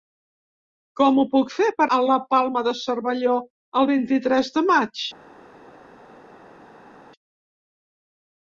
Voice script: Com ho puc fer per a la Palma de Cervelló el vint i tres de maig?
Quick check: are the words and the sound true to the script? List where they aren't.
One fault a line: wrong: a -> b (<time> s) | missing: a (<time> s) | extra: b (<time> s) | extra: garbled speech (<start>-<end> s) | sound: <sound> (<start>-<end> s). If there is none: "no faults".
no faults